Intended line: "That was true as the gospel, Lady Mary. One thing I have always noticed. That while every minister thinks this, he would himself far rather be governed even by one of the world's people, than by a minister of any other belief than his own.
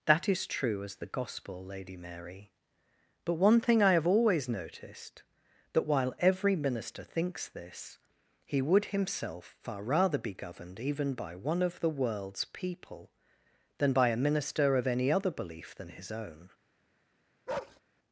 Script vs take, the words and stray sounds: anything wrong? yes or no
yes